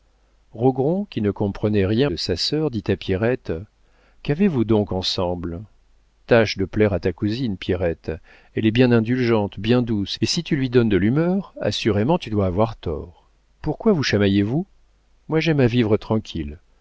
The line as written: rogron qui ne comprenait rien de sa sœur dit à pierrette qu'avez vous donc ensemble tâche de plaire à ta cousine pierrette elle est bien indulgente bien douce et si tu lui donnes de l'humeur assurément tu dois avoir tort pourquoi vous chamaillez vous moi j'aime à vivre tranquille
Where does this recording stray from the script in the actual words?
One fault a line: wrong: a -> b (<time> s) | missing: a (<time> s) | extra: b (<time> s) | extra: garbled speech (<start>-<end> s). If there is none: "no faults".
no faults